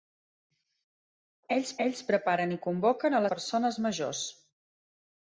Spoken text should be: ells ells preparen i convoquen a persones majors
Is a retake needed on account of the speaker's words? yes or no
no